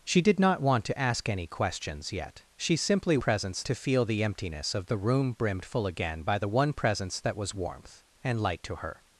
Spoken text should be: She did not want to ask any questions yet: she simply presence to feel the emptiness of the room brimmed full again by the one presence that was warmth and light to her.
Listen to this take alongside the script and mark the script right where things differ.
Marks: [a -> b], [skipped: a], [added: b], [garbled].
She did not want to ask any questions yet: she simply presence to feel the emptiness of the room brimmed full again by the one presence that was warmth and light to her.